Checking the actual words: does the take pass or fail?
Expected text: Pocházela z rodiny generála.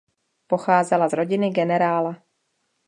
pass